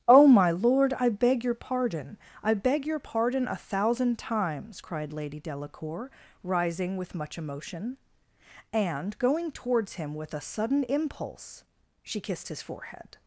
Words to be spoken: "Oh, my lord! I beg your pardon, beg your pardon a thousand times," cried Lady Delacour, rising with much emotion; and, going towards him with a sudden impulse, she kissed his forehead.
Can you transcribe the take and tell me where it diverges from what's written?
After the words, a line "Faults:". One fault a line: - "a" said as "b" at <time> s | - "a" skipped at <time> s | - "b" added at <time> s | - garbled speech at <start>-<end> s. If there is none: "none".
"Oh, my lord! I beg your pardon, I beg your pardon a thousand times," cried Lady Delacour, rising with much emotion; and, going towards him with a sudden impulse, she kissed his forehead.
Faults:
- "I" added at 2.4 s